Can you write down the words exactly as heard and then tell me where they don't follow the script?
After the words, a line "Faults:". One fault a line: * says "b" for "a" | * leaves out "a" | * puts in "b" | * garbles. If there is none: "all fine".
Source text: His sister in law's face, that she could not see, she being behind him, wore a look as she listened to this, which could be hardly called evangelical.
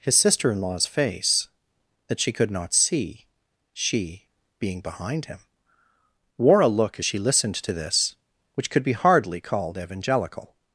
His sister in law's face, that she could not see, she being behind him, wore a look as she listened to this, which could be hardly called evangelical.
Faults:
all fine